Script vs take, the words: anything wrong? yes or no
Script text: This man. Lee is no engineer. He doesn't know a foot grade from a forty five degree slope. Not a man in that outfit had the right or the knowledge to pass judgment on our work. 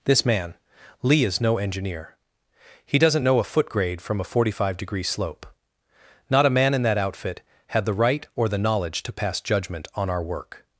no